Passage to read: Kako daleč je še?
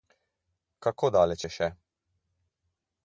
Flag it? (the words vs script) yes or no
no